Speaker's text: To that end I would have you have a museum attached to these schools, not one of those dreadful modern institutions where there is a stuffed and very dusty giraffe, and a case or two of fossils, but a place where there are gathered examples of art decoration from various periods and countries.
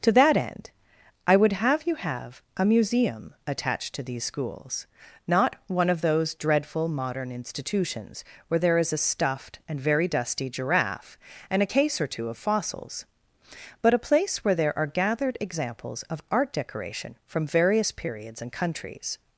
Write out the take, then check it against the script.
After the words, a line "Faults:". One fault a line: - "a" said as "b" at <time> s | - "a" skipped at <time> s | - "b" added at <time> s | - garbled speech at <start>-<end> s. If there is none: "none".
To that end I would have you have a museum attached to these schools, not one of those dreadful modern institutions where there is a stuffed and very dusty giraffe, and a case or two of fossils, but a place where there are gathered examples of art decoration from various periods and countries.
Faults:
none